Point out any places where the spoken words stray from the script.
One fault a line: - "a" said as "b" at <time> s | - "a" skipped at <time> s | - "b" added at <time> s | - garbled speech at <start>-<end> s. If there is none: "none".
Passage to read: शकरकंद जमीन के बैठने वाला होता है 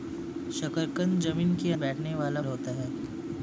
none